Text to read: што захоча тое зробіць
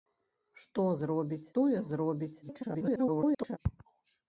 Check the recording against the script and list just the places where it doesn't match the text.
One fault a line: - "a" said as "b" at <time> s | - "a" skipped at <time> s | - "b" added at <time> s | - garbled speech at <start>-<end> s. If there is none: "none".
- "захоча" said as "зробіць" at 1.1 s
- garbled speech at 2.4-3.6 s